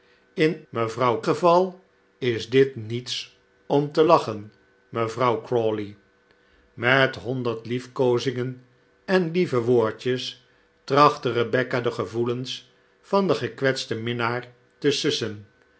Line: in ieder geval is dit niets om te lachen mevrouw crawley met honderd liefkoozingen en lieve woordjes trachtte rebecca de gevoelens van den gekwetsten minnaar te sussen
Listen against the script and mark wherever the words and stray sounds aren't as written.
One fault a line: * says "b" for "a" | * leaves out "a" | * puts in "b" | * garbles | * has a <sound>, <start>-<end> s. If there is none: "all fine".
* says "mevrouw" for "ieder"